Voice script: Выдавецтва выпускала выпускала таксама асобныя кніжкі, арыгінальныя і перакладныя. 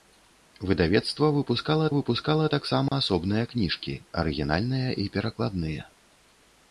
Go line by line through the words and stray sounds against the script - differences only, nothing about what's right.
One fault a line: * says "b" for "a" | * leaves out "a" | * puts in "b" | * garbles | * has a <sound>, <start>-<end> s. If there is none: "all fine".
* has a dropout, 2.9-2.9 s